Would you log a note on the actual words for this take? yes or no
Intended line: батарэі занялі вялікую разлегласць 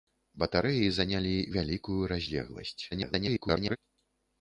yes